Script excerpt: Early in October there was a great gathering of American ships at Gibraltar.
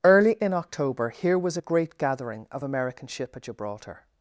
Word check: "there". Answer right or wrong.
wrong